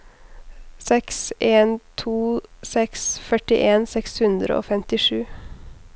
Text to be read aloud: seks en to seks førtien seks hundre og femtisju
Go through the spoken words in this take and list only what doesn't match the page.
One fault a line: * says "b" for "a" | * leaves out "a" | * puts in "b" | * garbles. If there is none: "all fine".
all fine